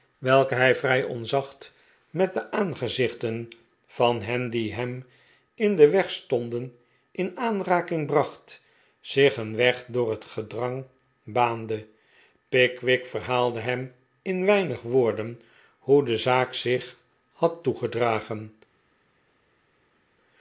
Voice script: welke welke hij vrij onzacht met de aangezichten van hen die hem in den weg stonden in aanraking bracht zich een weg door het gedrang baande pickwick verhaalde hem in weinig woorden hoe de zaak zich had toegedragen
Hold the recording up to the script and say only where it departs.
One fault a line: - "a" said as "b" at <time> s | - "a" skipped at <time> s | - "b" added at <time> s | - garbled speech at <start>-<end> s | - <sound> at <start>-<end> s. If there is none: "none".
- "welke" skipped at 0.6 s